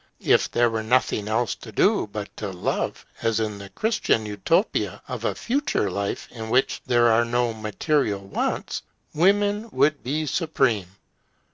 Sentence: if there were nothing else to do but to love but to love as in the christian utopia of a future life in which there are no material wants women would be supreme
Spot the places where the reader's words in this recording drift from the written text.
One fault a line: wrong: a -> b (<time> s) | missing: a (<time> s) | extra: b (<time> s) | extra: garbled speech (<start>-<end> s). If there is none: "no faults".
missing: but to love (3.0 s)